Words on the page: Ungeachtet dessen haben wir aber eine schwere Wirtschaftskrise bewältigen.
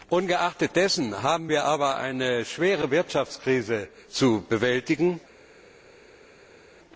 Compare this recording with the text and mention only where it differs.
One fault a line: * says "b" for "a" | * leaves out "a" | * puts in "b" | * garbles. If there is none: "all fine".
* puts in "zu"